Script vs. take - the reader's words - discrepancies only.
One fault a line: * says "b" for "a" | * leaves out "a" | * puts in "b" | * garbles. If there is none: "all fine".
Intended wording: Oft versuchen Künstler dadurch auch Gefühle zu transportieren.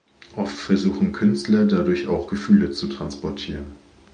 all fine